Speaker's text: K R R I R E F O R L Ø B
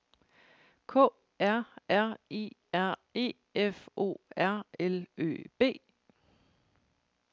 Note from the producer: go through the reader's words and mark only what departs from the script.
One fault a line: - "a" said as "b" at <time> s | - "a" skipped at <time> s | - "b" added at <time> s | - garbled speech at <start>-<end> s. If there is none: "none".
none